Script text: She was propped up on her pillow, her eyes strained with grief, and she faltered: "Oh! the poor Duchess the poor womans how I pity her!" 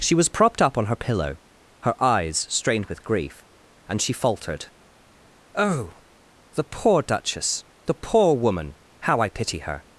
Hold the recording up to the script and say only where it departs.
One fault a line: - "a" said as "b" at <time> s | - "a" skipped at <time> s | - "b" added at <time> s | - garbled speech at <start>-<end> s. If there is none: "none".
- "womans" said as "woman" at 8.3 s